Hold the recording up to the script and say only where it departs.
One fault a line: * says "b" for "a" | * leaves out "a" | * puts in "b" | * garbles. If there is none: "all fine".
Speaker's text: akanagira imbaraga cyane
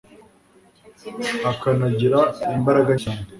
all fine